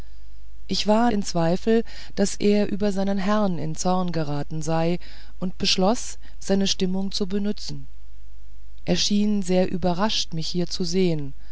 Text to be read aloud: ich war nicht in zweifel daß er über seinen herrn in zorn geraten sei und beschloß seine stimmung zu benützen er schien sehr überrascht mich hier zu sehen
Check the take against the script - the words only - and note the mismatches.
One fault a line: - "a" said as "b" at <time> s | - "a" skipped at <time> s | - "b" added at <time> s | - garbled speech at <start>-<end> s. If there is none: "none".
- "nicht" skipped at 1.1 s